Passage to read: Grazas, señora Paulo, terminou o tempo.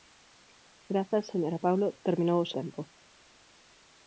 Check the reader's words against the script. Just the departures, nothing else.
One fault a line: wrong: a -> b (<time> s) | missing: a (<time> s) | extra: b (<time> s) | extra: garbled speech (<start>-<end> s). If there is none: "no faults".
no faults